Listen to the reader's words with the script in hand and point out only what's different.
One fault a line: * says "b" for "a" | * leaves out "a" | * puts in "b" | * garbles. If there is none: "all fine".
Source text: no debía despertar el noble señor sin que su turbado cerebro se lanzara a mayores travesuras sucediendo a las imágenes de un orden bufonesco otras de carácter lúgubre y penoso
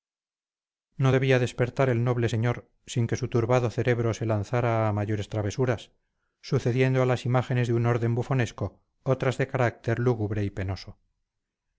all fine